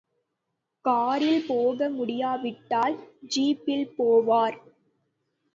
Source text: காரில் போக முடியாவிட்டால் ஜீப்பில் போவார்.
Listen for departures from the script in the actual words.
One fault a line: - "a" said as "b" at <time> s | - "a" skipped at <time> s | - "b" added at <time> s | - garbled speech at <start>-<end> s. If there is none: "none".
none